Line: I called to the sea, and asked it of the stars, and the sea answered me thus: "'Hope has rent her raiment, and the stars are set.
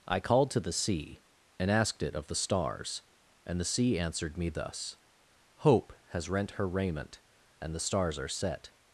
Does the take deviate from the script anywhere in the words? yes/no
no